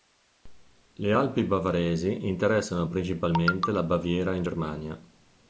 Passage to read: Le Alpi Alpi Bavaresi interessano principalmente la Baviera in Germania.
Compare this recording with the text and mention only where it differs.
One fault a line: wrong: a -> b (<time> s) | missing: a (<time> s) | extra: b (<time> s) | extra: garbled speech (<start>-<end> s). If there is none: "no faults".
missing: Alpi (1.4 s)